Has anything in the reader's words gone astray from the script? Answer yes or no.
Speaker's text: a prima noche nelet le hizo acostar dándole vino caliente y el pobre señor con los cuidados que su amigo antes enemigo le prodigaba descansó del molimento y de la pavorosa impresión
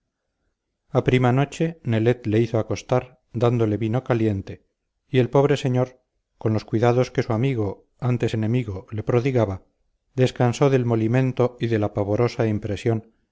no